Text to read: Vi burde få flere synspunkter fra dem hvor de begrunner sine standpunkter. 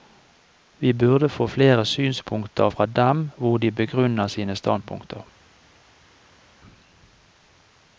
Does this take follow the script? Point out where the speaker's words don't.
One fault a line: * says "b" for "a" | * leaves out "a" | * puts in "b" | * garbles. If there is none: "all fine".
all fine